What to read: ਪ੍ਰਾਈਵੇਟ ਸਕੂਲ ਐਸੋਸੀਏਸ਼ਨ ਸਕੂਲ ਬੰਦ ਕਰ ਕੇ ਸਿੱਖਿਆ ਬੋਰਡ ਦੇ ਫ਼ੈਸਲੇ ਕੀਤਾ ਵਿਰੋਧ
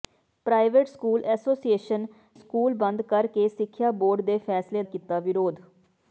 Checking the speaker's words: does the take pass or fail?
pass